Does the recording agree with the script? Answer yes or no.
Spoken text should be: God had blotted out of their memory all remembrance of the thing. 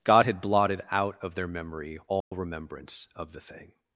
yes